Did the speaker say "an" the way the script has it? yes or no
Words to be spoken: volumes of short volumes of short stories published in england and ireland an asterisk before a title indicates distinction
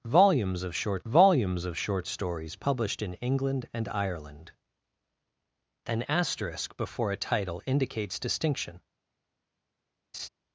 yes